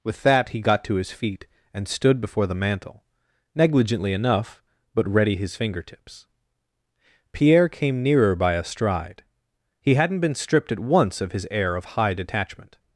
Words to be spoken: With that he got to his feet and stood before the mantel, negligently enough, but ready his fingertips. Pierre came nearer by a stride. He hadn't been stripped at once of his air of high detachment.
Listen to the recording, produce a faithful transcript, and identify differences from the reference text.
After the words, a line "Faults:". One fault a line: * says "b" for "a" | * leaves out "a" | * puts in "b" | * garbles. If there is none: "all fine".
With that he got to his feet and stood before the mantel, negligently enough, but ready his fingertips. Pierre came nearer by a stride. He hadn't been stripped at once of his air of high detachment.
Faults:
all fine